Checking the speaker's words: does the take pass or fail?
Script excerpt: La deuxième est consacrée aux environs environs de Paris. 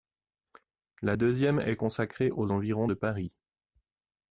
fail